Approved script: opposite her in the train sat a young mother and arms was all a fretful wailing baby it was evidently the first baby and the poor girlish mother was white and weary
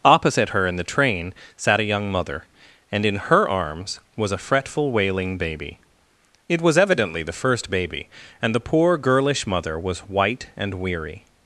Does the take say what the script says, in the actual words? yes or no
no